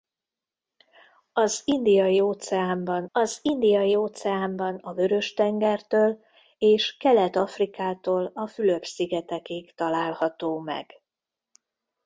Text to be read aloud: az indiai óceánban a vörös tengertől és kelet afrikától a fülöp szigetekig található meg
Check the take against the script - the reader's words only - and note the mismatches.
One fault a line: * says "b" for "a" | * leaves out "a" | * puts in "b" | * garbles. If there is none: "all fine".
* puts in "az indiai óceánban"